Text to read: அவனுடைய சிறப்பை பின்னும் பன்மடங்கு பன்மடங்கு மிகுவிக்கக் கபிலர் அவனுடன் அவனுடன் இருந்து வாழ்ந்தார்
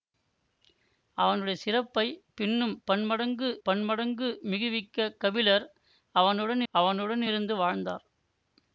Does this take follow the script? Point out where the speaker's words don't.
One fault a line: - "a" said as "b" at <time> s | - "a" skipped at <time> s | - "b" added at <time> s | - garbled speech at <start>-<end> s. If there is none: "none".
none